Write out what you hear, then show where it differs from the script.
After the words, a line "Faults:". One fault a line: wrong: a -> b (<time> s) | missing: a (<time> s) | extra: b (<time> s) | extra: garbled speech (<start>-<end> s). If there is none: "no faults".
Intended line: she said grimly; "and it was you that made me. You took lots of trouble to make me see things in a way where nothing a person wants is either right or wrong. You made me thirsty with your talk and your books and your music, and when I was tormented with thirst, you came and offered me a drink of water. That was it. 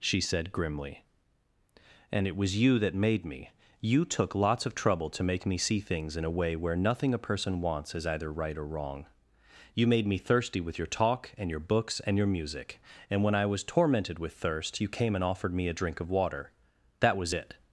she said grimly; "and it was you that made me. You took lots of trouble to make me see things in a way where nothing a person wants is either right or wrong. You made me thirsty with your talk and your books and your music, and when I was tormented with thirst, you came and offered me a drink of water. That was it.
Faults:
no faults